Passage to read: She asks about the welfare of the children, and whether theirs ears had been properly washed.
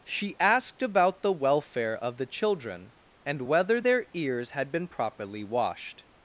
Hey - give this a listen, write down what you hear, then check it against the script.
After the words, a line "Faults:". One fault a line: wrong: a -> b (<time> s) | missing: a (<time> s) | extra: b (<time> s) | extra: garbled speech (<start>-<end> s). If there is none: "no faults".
She asked about the welfare of the children, and whether their ears had been properly washed.
Faults:
wrong: asks -> asked (0.4 s)
wrong: theirs -> their (3.8 s)